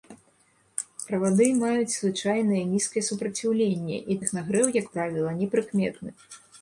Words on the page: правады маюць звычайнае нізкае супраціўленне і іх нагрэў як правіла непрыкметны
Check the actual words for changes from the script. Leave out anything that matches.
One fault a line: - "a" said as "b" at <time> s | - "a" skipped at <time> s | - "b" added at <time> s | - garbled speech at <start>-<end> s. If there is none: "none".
none